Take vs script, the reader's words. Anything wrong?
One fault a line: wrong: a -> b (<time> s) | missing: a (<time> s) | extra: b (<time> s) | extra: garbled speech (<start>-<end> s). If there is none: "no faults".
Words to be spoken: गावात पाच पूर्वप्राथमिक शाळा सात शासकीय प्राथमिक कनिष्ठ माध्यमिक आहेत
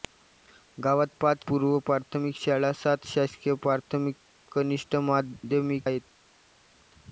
no faults